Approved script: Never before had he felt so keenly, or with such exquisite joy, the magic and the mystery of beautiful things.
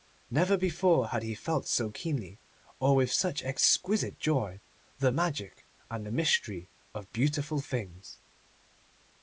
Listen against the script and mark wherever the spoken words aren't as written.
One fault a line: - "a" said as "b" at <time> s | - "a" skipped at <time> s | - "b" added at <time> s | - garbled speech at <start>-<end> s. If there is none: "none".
none